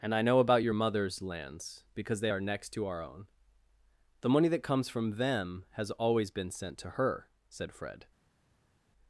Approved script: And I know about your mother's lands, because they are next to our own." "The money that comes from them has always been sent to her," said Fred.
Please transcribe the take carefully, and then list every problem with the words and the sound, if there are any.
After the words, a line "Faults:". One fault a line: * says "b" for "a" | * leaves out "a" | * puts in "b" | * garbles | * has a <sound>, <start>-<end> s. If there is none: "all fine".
And I know about your mother's lands, because they are next to our own." "The money that comes from them has always been sent to her," said Fred.
Faults:
all fine